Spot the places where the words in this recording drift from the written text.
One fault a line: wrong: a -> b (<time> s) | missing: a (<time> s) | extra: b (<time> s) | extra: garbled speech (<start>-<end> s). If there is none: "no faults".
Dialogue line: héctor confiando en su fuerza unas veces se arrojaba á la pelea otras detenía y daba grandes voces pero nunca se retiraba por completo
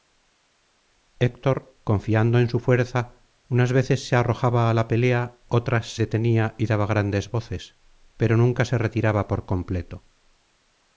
no faults